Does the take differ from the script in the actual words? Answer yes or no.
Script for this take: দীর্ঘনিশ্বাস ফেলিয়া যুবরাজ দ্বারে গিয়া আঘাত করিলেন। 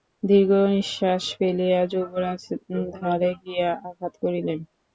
no